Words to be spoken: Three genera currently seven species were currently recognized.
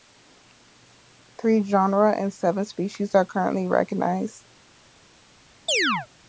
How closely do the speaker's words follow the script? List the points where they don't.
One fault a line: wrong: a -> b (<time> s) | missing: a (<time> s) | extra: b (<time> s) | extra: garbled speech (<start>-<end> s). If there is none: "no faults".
wrong: currently -> and (2.2 s)
wrong: were -> are (3.1 s)